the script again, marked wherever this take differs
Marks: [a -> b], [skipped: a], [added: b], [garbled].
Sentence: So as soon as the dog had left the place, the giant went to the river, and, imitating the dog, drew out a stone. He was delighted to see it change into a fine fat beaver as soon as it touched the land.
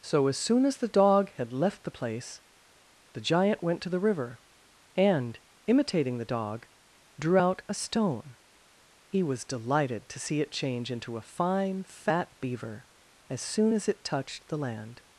So as soon as the dog had left the place, the giant went to the river, and, imitating the dog, drew out a stone. He was delighted to see it change into a fine fat beaver as soon as it touched the land.